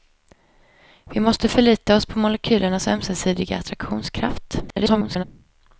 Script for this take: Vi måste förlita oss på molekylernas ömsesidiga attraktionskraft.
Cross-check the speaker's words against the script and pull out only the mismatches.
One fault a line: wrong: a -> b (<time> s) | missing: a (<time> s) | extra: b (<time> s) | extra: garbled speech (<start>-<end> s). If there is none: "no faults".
extra: garbled speech (4.7-5.2 s)